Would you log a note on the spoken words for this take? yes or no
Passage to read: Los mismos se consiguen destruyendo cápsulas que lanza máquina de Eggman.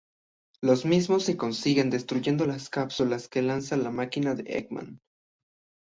yes